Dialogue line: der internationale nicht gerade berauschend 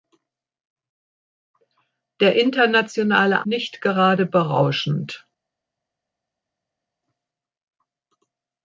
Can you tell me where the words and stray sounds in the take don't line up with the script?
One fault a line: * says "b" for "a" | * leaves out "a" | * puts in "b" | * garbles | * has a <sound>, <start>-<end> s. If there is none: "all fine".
all fine